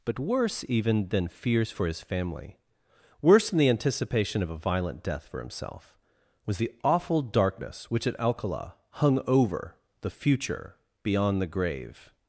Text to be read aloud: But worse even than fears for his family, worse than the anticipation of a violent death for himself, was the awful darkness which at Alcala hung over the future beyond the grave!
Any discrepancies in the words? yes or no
no